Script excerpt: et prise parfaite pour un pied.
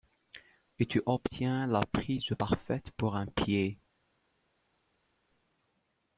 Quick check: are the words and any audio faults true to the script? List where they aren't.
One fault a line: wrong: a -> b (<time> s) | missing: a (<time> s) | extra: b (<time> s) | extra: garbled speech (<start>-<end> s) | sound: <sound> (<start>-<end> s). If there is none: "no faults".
extra: tu obtiens la (0.9 s)